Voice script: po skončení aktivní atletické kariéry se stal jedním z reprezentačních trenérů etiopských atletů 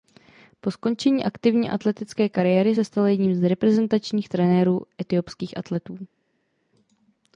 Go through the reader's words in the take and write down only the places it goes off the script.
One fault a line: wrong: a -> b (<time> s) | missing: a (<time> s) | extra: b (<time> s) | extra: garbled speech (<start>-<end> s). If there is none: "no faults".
no faults